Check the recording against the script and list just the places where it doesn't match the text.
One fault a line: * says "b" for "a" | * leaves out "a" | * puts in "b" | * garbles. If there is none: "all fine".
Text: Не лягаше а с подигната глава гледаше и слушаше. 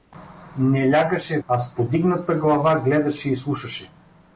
all fine